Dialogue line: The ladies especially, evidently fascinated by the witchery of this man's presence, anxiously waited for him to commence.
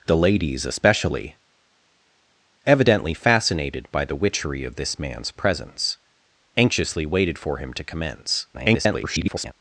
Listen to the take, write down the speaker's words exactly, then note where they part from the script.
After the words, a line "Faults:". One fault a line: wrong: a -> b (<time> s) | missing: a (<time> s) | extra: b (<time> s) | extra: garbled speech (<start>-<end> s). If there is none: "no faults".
The ladies especially, evidently fascinated by the witchery of this man's presence, anxiously waited for him to commence. [garbled]
Faults:
extra: garbled speech (8.5-9.5 s)